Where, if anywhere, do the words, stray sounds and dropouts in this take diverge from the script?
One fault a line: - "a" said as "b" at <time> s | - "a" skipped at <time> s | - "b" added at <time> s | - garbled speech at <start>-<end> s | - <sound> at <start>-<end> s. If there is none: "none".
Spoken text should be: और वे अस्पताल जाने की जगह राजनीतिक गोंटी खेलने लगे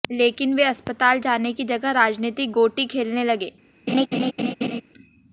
- "और" said as "लेकिन" at 0.1 s
- laugh at 3.9-4.8 s